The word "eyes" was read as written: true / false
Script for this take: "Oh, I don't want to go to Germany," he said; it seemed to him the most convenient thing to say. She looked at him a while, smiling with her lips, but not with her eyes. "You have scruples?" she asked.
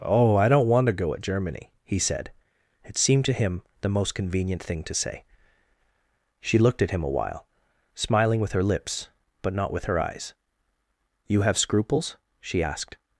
true